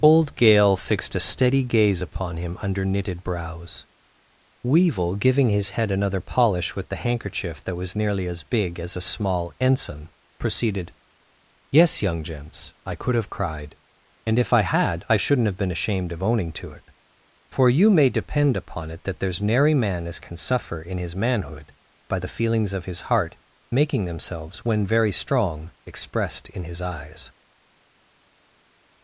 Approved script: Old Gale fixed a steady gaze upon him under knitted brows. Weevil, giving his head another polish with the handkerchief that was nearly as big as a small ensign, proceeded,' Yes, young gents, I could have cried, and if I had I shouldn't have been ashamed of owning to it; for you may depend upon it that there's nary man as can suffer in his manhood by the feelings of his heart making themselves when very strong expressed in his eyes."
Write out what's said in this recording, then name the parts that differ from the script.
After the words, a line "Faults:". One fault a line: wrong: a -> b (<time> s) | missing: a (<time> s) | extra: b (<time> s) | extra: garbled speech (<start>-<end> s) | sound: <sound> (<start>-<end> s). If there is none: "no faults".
Old Gale fixed a steady gaze upon him under knitted brows. Weevil, giving his head another polish with the handkerchief that was nearly as big as a small ensign, proceeded,' Yes, young gents, I could have cried, and if I had I shouldn't have been ashamed of owning to it; for you may depend upon it that there's nary man as can suffer in his manhood by the feelings of his heart making themselves when very strong expressed in his eyes."
Faults:
no faults